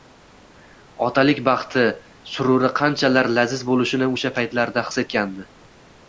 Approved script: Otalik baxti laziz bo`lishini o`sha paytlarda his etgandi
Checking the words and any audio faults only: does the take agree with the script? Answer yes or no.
no